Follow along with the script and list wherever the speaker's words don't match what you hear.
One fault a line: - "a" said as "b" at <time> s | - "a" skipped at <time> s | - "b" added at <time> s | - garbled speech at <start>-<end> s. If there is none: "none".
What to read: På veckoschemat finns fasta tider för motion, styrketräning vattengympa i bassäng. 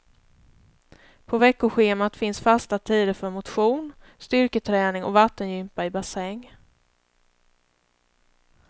- "och" added at 5.0 s